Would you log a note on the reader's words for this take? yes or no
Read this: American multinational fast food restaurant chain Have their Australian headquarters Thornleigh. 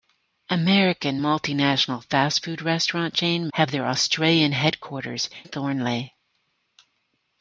no